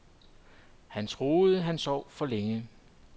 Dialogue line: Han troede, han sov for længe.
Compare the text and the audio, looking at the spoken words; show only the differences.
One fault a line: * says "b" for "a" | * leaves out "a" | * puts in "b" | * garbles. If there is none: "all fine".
all fine